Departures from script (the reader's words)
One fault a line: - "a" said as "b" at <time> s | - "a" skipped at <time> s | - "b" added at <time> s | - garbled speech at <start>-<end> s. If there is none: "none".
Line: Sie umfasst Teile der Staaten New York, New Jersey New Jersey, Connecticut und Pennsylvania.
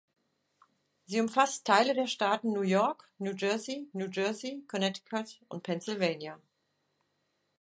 none